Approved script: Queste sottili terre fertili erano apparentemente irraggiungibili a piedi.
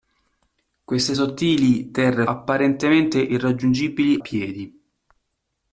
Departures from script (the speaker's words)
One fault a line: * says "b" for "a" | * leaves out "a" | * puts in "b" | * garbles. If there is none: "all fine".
* leaves out "fertili erano"
* leaves out "a"